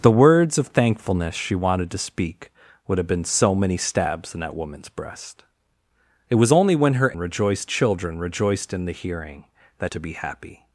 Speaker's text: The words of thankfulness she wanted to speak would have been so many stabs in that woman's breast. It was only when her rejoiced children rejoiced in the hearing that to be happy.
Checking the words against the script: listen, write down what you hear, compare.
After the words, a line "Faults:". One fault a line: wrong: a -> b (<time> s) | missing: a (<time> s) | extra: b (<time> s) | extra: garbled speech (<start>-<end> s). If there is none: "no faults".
The words of thankfulness she wanted to speak would have been so many stabs in that woman's breast. It was only when her rejoiced children rejoiced in the hearing that to be happy.
Faults:
no faults